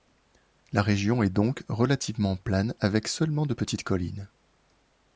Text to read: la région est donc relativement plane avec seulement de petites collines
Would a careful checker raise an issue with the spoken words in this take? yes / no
no